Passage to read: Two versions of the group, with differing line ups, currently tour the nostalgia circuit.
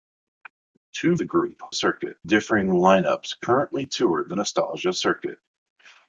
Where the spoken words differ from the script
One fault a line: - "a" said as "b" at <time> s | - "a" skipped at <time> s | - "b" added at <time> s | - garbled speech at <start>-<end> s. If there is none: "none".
- "versions of" skipped at 1.1 s
- "with" said as "circuit" at 1.7 s